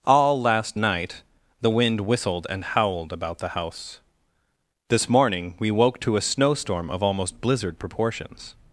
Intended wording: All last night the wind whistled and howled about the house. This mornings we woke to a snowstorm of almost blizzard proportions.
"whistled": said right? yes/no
yes